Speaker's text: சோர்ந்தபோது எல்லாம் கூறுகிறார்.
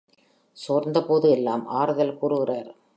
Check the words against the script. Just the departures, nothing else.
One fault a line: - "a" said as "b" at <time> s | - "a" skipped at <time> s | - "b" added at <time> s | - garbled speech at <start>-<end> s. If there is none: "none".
- "ஆறுதல்" added at 1.7 s